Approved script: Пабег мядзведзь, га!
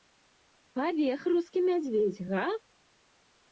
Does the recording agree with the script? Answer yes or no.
no